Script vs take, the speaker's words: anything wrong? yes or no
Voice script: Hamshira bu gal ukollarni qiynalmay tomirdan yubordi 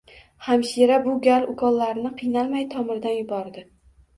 no